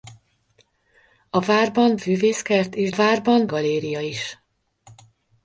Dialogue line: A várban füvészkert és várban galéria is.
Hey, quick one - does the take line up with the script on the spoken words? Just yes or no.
yes